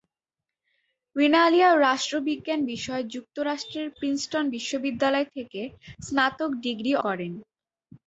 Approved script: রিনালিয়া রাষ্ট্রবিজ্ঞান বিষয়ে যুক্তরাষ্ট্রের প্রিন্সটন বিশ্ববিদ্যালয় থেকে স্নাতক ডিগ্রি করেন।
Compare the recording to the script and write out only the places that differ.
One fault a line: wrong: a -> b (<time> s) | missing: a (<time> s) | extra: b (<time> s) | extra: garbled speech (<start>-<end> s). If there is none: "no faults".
no faults